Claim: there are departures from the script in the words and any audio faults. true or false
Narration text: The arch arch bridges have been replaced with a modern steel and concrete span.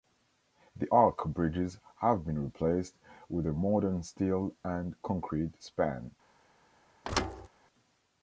true